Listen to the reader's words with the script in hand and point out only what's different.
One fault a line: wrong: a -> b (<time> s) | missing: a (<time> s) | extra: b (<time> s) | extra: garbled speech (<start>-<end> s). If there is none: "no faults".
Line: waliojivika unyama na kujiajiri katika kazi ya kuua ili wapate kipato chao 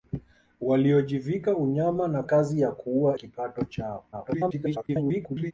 missing: kujiajiri katika (2.2 s)
missing: ili wapate (3.2 s)
extra: garbled speech (4.1-5.5 s)